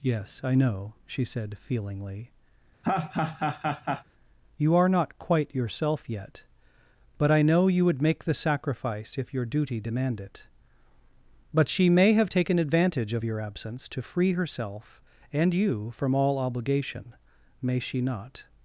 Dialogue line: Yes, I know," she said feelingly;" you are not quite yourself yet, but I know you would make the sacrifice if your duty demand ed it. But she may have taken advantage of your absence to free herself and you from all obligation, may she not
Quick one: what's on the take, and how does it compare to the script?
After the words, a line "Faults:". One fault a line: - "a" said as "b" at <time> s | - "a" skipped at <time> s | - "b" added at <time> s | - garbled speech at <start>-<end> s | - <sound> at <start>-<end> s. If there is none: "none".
Yes, I know," she said feelingly;" you are not quite yourself yet, but I know you would make the sacrifice if your duty demand it. But she may have taken advantage of your absence to free herself and you from all obligation, may she not
Faults:
- laugh at 2.8-4.0 s
- "ed" skipped at 10.2 s